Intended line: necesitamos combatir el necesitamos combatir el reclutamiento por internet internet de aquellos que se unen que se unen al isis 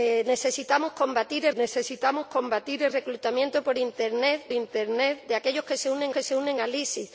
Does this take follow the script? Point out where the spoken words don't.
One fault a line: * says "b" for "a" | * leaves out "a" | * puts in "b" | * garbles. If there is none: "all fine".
all fine